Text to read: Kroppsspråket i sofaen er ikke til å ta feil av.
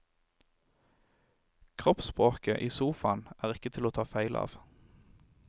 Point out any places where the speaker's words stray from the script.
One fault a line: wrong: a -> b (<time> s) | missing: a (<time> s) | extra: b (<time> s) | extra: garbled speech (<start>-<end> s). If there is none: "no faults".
no faults